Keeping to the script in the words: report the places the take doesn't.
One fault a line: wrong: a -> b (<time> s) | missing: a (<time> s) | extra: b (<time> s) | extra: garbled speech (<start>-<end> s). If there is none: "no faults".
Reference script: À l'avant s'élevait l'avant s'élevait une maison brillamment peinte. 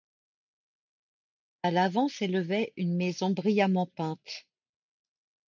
missing: l'avant s'élevait (2.7 s)